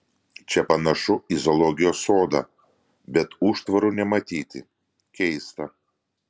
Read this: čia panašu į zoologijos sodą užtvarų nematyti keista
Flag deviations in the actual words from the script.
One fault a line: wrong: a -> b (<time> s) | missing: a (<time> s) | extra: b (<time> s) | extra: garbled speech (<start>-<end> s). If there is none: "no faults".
extra: bet (3.2 s)